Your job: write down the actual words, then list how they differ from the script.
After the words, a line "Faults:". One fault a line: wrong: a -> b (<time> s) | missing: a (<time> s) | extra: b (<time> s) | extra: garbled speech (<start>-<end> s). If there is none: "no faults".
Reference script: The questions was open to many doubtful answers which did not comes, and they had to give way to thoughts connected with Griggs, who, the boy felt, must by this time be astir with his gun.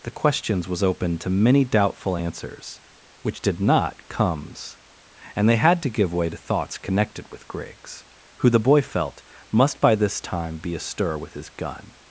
The questions was open to many doubtful answers which did not comes, and they had to give way to thoughts connected with Griggs, who, the boy felt, must by this time be astir with his gun.
Faults:
no faults